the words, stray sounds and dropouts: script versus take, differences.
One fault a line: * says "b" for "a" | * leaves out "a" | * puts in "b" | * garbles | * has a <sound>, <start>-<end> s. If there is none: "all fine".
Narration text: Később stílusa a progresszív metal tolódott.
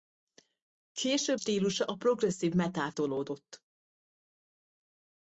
all fine